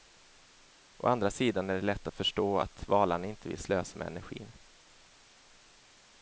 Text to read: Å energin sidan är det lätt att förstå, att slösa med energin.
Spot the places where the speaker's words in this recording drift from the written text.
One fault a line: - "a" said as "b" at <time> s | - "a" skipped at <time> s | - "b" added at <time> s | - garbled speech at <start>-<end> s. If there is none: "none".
- "energin" said as "andra" at 1.1 s
- "valarna inte vill" added at 2.9 s